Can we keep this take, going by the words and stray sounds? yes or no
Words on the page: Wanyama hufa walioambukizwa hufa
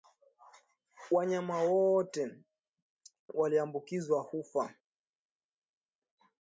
no